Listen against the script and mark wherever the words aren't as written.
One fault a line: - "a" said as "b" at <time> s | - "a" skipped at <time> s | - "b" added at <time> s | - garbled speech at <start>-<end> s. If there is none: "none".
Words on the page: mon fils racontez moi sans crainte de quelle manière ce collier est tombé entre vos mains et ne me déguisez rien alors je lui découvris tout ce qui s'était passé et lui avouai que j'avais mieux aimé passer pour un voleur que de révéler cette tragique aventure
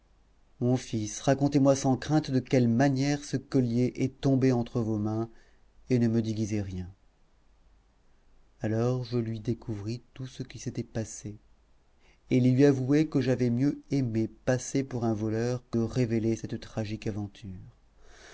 - "de" skipped at 15.8 s